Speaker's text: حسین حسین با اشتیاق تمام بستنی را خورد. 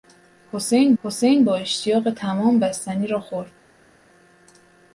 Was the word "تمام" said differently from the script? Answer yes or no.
no